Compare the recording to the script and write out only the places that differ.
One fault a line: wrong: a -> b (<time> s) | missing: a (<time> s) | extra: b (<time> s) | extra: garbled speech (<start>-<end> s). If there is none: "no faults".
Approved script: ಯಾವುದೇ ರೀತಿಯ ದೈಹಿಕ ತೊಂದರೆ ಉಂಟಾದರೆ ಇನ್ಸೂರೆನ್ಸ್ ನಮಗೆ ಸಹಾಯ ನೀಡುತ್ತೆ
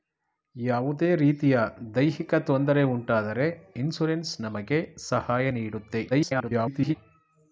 extra: garbled speech (6.1-7.0 s)